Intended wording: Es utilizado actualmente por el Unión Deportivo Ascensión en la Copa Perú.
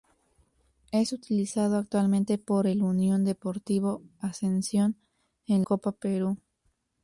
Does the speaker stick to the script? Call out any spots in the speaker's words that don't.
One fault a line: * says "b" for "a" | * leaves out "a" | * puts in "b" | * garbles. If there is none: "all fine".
* leaves out "la"